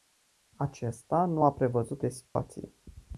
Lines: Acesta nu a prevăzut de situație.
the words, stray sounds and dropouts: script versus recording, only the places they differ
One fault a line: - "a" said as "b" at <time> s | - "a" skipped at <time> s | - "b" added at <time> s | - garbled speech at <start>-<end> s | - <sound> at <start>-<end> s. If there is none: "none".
- dropout at 2.3-2.4 s